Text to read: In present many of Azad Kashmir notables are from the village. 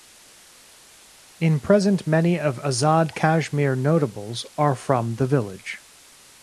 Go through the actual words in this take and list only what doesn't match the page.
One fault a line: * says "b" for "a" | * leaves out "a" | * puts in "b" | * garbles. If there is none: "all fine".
all fine